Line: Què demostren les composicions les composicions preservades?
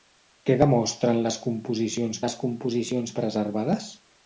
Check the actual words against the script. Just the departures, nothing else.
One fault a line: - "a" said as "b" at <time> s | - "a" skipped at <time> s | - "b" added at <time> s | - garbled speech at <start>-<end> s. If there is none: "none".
none